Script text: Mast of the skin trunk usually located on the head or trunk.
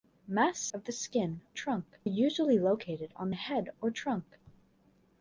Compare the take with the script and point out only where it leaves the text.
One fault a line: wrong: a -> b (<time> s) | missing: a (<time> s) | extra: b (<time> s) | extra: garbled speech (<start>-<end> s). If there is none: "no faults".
no faults